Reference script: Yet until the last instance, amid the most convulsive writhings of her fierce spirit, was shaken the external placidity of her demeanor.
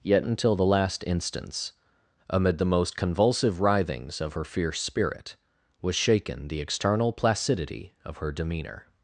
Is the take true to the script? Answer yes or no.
yes